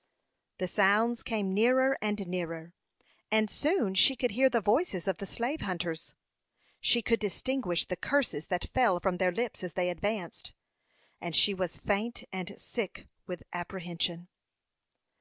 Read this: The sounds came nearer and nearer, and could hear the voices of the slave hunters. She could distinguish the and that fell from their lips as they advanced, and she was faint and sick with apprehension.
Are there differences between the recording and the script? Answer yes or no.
yes